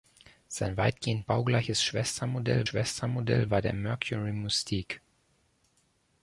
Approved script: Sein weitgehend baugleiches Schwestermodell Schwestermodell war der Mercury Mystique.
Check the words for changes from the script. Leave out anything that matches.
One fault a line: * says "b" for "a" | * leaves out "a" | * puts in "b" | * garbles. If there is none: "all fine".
all fine